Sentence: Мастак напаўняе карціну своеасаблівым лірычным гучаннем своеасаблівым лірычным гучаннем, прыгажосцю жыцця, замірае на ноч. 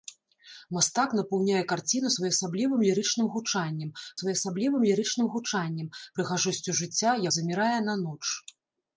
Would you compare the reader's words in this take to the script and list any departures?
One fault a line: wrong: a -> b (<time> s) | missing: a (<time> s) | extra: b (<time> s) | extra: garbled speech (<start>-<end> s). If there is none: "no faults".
no faults